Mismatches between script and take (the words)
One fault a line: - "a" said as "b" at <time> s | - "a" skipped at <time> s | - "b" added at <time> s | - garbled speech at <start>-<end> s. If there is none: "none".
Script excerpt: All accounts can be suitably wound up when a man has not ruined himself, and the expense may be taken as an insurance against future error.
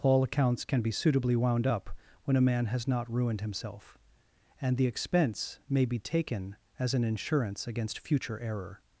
none